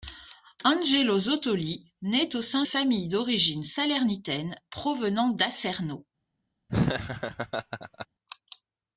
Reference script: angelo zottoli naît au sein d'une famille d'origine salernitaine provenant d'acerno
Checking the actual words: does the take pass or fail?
fail